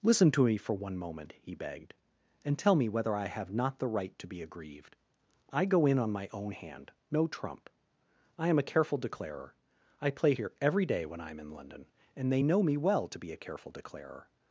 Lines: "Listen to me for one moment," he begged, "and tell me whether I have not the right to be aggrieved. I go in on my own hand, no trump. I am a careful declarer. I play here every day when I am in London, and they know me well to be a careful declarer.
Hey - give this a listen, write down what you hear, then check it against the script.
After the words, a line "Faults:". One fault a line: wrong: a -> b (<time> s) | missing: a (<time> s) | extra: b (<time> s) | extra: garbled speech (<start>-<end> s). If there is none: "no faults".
"Listen to me for one moment," he begged, "and tell me whether I have not the right to be aggrieved. I go in on my own hand, no trump. I am a careful declarer. I play here every day when I am in London, and they know me well to be a careful declarer.
Faults:
no faults